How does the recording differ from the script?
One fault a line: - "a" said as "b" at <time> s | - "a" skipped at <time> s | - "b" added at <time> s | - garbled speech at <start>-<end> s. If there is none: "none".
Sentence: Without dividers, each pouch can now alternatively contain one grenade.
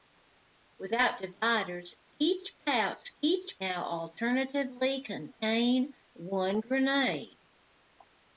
- "can" said as "each" at 3.2 s